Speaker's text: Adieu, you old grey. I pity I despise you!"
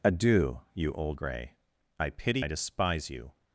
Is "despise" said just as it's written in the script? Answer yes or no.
yes